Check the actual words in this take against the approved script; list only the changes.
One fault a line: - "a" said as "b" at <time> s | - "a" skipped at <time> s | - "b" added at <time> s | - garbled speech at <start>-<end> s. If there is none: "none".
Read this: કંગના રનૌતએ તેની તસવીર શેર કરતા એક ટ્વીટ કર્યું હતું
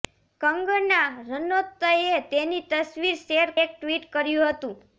- "કરતા" skipped at 3.5 s